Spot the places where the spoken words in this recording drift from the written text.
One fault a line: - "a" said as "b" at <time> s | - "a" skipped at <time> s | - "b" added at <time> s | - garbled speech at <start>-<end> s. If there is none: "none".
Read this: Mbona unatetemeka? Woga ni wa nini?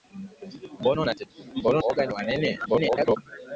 - "unatetemeka" skipped at 1.8 s
- garbled speech at 2.7-3.2 s